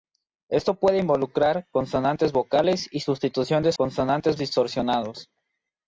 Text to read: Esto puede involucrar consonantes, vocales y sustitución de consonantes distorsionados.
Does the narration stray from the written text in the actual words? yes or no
no